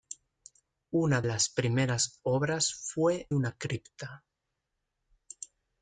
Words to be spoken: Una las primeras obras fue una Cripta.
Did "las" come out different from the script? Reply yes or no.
no